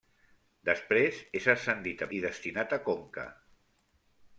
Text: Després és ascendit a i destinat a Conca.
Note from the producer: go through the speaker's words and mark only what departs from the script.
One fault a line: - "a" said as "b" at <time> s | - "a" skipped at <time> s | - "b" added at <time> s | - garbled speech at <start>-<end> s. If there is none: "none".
none